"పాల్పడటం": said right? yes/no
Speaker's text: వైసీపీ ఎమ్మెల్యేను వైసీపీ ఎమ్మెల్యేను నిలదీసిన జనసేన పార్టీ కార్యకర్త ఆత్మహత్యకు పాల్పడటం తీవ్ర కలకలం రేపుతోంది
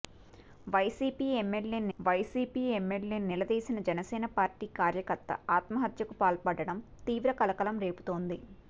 yes